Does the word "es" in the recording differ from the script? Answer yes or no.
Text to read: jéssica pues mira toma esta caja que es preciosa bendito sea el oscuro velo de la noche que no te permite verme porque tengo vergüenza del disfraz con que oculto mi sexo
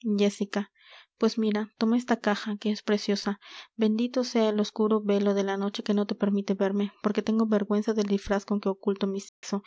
no